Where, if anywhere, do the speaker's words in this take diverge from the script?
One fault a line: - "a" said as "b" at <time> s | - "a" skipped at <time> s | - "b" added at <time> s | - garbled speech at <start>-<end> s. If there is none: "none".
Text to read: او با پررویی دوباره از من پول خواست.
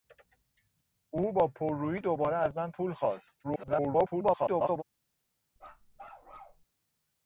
- garbled speech at 3.4-4.8 s